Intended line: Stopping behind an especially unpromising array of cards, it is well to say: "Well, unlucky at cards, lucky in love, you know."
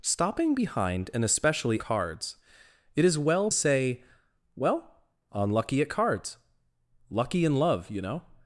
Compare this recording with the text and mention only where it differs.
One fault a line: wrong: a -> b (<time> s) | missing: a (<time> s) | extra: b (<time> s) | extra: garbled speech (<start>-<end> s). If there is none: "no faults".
missing: unpromising array of (1.8 s)
missing: to (3.5 s)